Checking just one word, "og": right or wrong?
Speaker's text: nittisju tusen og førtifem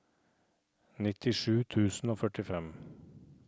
right